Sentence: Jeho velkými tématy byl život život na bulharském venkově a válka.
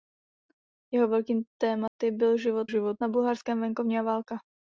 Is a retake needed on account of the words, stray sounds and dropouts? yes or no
yes